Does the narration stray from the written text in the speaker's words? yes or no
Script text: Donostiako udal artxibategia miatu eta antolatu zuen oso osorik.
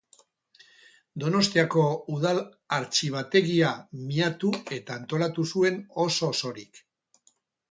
no